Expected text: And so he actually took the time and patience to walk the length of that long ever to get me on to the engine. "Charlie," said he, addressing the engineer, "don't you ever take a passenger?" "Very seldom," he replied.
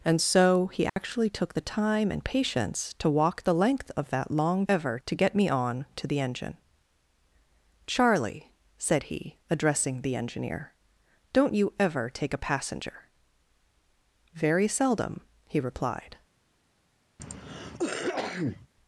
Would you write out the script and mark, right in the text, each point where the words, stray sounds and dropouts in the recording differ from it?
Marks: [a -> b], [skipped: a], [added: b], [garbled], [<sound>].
And so he actually [dropout] took the time and patience to walk the length of that long ever to get me on to the engine. "Charlie," said he, addressing the engineer, "don't you ever take a passenger?" "Very seldom," he replied. [cough]